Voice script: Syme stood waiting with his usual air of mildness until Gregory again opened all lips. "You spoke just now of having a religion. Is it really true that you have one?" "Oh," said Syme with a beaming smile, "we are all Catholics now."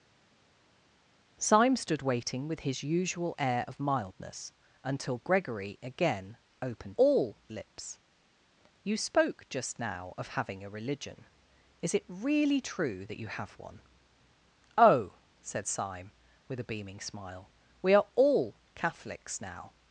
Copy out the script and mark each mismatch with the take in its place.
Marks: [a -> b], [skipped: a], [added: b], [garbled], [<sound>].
Syme stood waiting with his usual air of mildness until Gregory again opened all lips. "You spoke just now of having a religion. Is it really true that you have one?" "Oh," said Syme with a beaming smile, "we are all Catholics now."